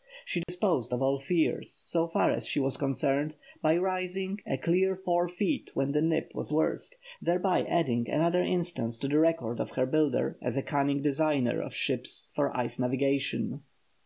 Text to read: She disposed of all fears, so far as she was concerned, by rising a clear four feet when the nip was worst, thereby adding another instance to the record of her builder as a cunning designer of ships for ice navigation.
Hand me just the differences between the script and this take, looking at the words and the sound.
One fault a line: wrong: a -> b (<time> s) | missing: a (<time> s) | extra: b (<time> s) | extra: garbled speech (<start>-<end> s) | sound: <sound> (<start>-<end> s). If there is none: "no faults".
sound: dropout (0.4-0.5 s)